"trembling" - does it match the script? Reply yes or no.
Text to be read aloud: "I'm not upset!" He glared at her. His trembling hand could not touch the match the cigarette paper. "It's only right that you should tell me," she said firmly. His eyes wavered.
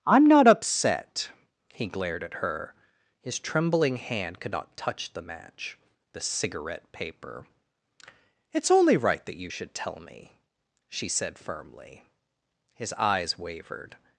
yes